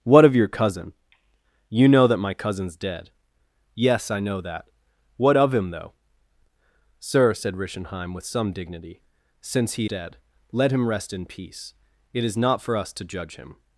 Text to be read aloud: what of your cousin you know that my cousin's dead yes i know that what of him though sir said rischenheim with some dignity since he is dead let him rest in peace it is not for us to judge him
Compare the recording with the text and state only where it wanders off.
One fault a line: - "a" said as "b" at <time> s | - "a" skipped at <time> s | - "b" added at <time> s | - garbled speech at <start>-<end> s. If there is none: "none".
- "is" skipped at 9.9 s